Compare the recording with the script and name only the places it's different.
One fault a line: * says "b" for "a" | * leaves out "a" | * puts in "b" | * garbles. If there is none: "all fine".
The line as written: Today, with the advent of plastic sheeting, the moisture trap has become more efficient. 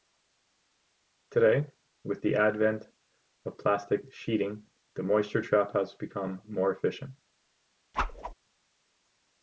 all fine